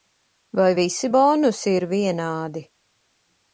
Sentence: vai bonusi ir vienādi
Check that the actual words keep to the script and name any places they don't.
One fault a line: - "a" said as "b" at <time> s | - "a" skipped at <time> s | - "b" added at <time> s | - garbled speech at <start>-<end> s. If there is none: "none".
- "visi" added at 0.8 s